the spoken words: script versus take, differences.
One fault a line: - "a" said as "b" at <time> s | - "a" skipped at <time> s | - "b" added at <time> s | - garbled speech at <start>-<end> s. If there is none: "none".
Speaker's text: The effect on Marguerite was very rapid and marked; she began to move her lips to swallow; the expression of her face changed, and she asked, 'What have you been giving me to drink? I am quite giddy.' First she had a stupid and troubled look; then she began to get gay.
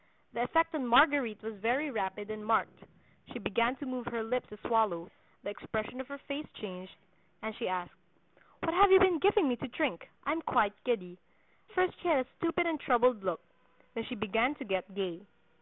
none